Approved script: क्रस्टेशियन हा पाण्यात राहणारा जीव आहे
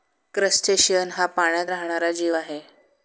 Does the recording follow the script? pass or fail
pass